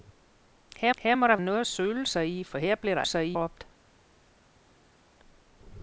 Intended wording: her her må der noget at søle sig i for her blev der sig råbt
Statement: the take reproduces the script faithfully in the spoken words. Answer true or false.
true